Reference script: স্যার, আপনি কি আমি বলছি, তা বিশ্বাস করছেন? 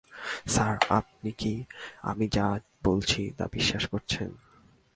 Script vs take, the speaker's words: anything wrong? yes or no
yes